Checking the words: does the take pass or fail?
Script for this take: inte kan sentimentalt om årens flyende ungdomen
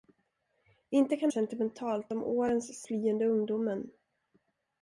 pass